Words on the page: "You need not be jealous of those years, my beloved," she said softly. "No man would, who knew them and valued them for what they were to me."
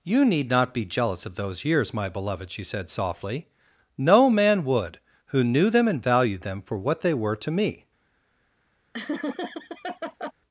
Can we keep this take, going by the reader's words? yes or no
yes